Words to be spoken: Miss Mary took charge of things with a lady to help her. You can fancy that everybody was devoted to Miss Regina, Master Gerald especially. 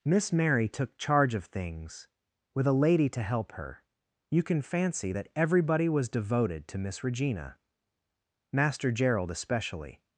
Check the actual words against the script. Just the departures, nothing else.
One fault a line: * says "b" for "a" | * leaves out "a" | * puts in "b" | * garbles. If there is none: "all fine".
all fine